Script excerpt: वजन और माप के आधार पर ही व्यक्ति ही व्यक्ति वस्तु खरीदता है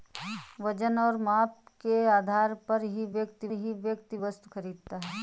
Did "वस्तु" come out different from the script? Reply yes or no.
no